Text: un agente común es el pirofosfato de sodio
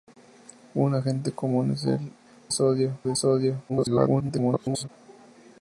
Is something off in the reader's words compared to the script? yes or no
yes